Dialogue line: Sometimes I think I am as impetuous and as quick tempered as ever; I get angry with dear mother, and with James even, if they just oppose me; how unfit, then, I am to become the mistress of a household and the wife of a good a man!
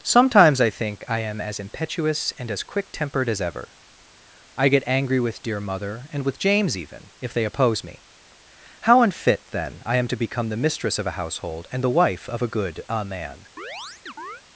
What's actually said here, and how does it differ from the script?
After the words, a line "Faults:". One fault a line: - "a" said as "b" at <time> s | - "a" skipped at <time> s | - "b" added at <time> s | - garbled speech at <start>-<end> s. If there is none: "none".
Sometimes I think I am as impetuous and as quick tempered as ever; I get angry with dear mother, and with James even, if they oppose me; how unfit, then, I am to become the mistress of a household and the wife of a good a man!
Faults:
- "just" skipped at 7.5 s